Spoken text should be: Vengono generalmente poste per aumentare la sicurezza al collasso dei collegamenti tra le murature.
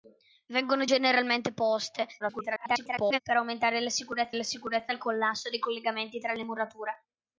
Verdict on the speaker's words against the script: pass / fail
fail